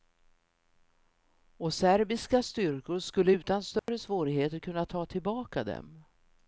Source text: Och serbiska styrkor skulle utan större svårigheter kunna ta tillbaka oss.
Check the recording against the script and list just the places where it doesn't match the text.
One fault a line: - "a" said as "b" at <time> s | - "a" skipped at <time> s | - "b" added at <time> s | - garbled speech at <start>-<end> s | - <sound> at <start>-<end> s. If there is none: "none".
- dropout at 3.8-3.9 s
- "oss" said as "dem" at 5.6 s